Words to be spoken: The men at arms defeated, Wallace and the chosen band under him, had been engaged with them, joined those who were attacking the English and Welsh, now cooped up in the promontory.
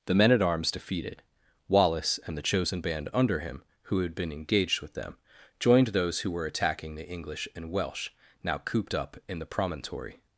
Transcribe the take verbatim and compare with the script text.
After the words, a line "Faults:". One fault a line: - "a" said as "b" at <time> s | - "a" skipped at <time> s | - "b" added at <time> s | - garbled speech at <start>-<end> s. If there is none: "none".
The men at arms defeated, Wallace and the chosen band under him, who had been engaged with them, joined those who were attacking the English and Welsh, now cooped up in the promontory.
Faults:
- "who" added at 3.8 s